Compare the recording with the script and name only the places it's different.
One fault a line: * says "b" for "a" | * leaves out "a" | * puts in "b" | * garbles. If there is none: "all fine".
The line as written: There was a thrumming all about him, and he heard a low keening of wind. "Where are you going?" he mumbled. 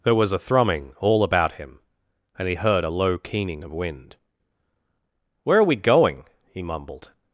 * says "we" for "you"